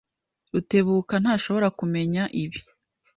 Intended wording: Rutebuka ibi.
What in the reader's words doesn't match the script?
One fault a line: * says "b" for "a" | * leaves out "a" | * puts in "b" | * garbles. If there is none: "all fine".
* puts in "ntashobora kumenya"